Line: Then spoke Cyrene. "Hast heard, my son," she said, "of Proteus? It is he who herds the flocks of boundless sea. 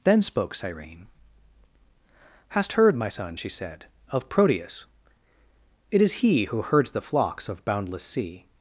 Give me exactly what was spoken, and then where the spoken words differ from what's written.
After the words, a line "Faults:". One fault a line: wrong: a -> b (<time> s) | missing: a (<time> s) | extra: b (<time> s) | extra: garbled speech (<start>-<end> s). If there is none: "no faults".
Then spoke Cyrene. "Hast heard, my son," she said, "of Proteus? It is he who herds the flocks of boundless sea.
Faults:
no faults